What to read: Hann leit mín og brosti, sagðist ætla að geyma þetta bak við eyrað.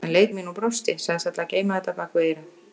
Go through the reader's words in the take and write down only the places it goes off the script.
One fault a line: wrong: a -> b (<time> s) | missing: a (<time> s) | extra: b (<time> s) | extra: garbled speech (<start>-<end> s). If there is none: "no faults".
no faults